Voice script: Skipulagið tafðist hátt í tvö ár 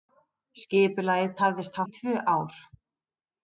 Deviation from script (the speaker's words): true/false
true